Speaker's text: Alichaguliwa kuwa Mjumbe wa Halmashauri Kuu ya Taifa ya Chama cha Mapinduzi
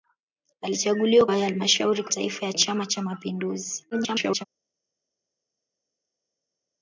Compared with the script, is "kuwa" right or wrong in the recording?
wrong